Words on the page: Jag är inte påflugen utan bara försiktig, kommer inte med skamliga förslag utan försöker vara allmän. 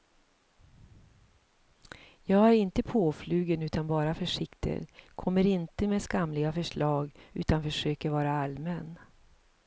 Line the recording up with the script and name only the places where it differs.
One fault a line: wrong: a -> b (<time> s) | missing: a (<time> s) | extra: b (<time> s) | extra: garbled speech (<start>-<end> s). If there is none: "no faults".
no faults